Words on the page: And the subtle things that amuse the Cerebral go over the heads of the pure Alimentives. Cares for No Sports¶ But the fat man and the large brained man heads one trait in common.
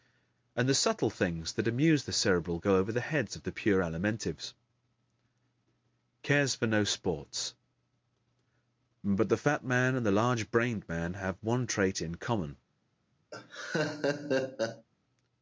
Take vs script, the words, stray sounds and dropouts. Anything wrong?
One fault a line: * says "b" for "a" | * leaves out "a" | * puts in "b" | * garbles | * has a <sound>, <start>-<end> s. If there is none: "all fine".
* says "have" for "heads"
* has a laugh, 13.3-14.9 s